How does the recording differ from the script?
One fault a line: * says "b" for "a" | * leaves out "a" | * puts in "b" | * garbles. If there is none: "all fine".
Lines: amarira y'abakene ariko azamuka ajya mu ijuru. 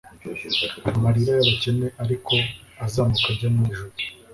all fine